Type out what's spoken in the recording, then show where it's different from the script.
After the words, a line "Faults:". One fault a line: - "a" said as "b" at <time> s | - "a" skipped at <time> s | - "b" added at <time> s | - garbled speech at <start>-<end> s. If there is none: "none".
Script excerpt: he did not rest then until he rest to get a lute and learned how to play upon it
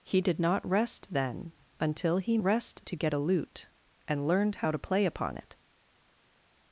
he did not rest then until he rest to get a lute and learned how to play upon it
Faults:
none